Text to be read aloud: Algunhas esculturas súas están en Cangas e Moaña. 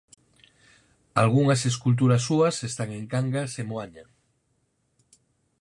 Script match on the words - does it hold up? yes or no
yes